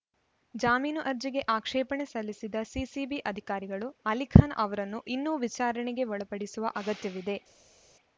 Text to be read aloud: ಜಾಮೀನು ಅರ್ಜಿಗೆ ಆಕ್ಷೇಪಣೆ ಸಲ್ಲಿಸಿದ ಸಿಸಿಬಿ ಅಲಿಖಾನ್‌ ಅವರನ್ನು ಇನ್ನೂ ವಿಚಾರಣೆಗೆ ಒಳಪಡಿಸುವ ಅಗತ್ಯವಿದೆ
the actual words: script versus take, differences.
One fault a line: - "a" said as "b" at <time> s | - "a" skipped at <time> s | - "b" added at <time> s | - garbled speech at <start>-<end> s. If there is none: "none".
- "ಅಧಿಕಾರಿಗಳು" added at 3.3 s